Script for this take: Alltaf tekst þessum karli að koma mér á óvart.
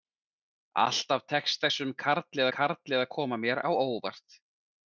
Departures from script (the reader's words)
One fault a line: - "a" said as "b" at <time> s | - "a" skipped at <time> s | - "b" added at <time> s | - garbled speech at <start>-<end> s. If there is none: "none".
- "karli" added at 2.6 s